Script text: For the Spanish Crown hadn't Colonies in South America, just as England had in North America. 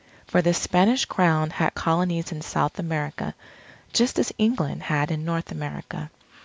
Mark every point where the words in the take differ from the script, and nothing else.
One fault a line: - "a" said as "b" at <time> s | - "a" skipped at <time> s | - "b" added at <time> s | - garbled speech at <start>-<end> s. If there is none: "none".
- "hadn't" said as "had" at 1.5 s